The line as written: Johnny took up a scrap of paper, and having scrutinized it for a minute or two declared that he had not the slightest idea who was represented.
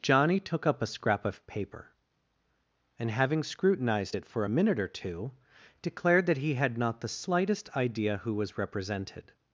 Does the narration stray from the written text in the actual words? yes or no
no